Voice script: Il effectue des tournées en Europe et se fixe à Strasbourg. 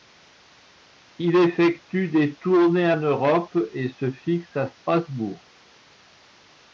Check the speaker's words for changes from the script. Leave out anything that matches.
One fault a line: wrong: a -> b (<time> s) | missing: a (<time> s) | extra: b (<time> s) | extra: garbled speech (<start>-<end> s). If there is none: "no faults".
no faults